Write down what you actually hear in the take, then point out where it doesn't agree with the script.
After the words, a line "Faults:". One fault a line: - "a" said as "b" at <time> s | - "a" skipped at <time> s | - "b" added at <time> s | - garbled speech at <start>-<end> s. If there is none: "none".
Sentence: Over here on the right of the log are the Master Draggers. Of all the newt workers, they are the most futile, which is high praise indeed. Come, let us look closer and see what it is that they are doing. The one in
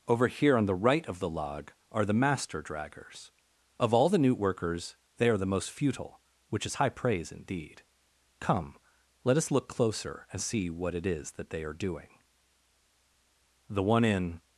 Over here on the right of the log are the Master Draggers. Of all the newt workers, they are the most futile, which is high praise indeed. Come, let us look closer and see what it is that they are doing. The one in
Faults:
none